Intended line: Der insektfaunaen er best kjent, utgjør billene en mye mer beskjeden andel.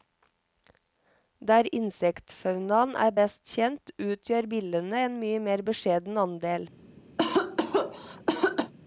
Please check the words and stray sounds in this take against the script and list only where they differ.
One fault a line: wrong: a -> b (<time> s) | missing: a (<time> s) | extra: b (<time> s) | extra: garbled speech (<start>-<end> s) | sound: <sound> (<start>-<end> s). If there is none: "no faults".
sound: cough (7.2-8.7 s)